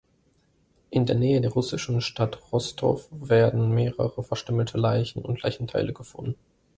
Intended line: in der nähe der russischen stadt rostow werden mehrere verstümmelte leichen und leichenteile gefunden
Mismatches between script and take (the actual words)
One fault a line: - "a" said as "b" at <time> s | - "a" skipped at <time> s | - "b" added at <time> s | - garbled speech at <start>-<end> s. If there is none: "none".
none